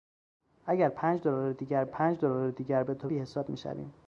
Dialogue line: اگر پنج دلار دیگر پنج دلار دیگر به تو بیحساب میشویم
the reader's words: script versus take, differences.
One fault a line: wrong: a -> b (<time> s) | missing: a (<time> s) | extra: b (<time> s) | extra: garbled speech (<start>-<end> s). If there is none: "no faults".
no faults